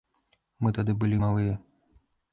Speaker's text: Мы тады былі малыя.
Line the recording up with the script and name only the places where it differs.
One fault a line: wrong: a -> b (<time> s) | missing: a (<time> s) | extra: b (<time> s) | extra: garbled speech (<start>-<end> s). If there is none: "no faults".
no faults